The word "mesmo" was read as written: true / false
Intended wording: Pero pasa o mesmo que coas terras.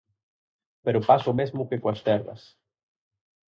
true